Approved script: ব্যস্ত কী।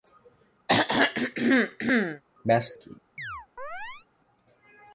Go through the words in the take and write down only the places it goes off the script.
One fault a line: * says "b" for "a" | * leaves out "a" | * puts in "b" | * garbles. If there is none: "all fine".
all fine